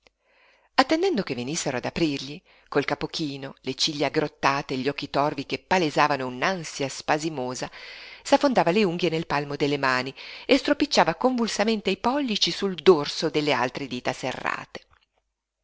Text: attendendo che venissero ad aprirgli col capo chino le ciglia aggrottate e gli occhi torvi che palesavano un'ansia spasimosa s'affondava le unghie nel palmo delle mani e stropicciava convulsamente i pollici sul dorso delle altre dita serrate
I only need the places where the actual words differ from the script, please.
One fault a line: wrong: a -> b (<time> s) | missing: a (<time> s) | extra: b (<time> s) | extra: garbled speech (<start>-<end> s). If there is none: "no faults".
no faults